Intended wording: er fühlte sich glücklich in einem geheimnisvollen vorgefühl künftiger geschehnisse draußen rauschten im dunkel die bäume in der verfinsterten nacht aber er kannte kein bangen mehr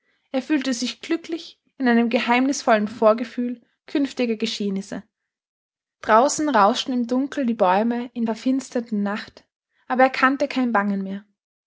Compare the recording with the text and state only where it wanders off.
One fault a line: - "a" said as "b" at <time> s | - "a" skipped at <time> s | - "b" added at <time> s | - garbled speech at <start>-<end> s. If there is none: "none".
- "der" skipped at 8.2 s